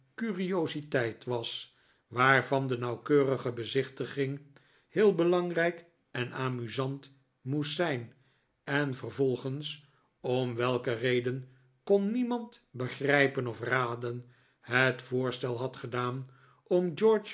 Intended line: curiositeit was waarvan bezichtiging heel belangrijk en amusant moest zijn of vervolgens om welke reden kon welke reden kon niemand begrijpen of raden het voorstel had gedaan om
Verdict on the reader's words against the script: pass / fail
fail